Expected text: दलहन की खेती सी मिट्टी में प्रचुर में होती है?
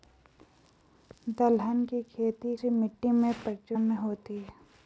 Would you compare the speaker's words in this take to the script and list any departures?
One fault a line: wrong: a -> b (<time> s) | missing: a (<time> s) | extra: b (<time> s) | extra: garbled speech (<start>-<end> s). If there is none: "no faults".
no faults